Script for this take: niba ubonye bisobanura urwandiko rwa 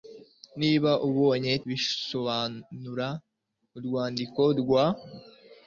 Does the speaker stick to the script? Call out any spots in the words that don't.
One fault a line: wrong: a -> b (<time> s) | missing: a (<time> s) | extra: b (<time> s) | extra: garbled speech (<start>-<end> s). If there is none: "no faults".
no faults